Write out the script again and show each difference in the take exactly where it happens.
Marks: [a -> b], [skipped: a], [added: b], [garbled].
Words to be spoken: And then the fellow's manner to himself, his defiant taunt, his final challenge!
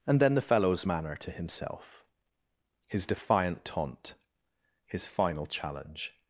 And then the fellow's manner to himself, his defiant taunt, his final challenge!